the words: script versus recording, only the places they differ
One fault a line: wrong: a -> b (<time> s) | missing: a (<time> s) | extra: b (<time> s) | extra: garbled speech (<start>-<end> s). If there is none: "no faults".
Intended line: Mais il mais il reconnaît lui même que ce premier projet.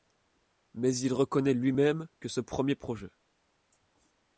missing: mais il (1.1 s)